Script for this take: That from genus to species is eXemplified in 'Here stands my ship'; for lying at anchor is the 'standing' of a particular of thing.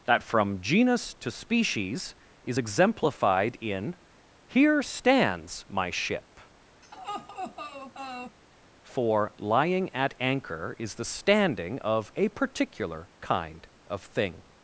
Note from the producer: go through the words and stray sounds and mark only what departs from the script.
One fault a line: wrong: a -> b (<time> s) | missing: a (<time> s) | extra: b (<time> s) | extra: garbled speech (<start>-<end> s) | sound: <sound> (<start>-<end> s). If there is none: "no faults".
sound: laugh (6.8-8.4 s)
extra: kind (13.2 s)